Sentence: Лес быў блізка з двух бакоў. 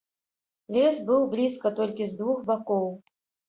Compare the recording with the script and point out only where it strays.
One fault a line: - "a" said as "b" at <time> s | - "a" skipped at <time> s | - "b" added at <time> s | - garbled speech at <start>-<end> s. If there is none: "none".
- "толькі" added at 1.8 s